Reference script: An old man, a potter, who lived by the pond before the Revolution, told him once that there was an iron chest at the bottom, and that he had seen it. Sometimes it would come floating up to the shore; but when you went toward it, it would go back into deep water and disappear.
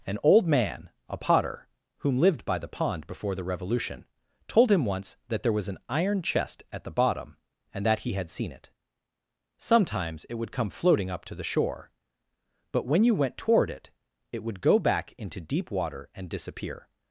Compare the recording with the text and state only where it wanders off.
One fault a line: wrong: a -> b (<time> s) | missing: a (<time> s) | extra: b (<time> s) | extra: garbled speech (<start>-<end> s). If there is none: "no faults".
wrong: who -> whom (2.0 s)